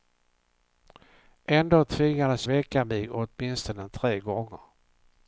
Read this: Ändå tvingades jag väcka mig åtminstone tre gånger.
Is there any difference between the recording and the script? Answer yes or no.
yes